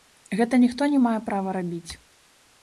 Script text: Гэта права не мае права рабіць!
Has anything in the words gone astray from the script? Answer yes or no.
yes